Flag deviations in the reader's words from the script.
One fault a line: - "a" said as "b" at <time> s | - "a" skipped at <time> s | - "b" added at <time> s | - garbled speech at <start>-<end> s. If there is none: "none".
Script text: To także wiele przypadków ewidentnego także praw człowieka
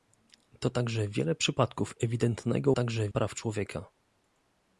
none